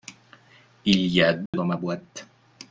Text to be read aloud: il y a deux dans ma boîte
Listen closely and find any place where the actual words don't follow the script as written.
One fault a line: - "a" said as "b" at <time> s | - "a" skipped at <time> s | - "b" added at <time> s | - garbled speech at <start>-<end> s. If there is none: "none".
none